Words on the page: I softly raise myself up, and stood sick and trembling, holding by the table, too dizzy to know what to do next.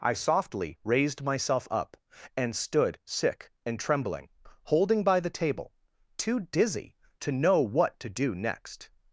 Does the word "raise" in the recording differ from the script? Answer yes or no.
yes